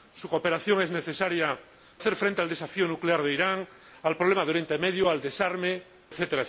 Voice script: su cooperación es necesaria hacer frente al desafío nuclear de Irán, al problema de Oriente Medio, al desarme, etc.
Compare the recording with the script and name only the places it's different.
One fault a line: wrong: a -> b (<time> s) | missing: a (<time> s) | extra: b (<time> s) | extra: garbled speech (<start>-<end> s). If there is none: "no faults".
no faults